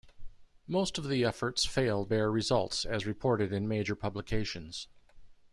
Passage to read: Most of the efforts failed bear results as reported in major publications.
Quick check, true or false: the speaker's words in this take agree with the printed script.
true